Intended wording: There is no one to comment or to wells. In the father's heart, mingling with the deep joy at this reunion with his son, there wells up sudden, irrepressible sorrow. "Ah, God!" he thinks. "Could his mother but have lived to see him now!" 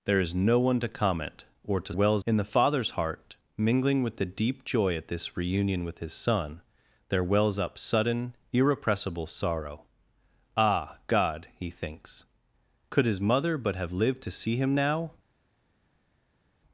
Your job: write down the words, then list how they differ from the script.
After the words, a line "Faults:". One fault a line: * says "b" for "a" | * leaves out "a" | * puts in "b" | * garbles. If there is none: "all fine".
There is no one to comment or to wells. In the father's heart, mingling with the deep joy at this reunion with his son, there wells up sudden, irrepressible sorrow. "Ah, God!" he thinks. "Could his mother but have lived to see him now!"
Faults:
all fine